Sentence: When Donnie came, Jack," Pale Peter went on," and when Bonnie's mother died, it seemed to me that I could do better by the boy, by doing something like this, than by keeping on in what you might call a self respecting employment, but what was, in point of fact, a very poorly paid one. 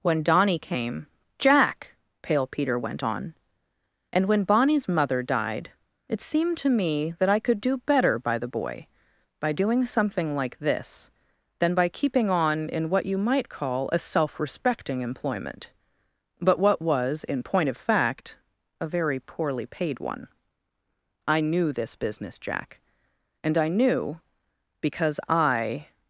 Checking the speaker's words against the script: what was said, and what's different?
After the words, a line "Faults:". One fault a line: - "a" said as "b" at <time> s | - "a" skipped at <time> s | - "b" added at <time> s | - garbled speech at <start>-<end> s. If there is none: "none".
When Donnie came, Jack," Pale Peter went on," and when Bonnie's mother died, it seemed to me that I could do better by the boy, by doing something like this, than by keeping on in what you might call a self respecting employment, but what was, in point of fact, a very poorly paid one. I knew this business, Jack, and I knew, because I
Faults:
- "I knew this business Jack and I knew because I" added at 21.3 s